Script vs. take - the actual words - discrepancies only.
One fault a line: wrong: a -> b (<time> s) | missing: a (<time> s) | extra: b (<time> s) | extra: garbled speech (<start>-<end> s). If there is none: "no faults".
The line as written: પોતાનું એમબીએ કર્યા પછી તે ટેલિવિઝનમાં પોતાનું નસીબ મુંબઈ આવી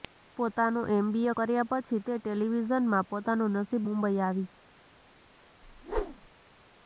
no faults